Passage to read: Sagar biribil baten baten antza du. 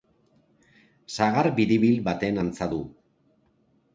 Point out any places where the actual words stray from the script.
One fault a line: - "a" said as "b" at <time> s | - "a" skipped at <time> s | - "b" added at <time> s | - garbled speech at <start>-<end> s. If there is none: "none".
- "baten" skipped at 2.4 s